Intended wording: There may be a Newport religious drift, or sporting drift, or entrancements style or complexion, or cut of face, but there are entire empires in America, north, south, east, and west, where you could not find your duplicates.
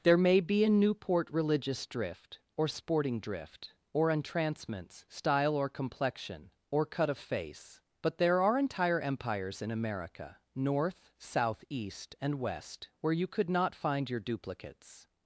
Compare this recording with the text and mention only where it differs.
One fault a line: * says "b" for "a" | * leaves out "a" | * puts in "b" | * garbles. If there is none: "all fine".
all fine